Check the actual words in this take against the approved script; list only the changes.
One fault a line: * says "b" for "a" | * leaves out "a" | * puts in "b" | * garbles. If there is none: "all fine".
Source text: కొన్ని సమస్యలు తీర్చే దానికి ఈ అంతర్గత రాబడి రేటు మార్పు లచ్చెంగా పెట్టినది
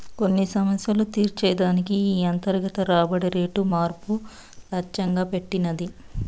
all fine